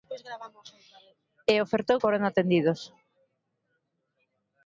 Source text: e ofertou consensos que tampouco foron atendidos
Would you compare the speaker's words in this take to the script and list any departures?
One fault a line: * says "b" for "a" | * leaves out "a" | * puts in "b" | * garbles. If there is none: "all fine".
* leaves out "consensos que tampouco"